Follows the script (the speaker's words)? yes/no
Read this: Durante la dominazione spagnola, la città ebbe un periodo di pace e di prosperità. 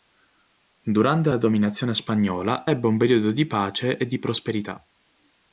no